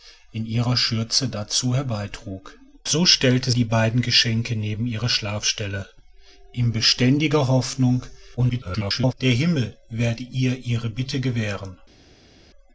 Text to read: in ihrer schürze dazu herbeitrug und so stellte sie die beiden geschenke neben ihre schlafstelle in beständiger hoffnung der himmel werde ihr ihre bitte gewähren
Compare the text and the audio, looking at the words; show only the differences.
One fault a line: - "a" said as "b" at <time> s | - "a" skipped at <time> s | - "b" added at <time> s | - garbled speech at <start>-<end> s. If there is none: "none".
- "und" skipped at 2.6 s
- "sie" skipped at 3.5 s
- garbled speech at 8.4-9.1 s